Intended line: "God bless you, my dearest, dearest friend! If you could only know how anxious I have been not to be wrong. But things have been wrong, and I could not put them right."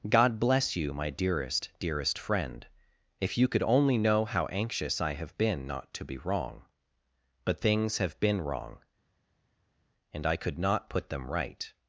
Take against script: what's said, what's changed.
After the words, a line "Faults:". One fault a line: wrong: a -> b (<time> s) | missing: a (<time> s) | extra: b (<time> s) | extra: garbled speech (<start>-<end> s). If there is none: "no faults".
"God bless you, my dearest, dearest friend! If you could only know how anxious I have been not to be wrong. But things have been wrong, and I could not put them right."
Faults:
no faults